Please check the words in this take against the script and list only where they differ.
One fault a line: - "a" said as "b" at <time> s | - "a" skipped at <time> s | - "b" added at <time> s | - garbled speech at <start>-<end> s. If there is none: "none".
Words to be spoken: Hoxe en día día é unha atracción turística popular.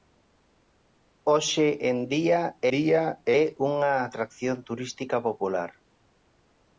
none